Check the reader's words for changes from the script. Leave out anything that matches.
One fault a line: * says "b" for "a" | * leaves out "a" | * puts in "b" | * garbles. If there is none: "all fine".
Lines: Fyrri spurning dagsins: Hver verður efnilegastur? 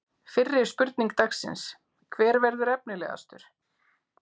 all fine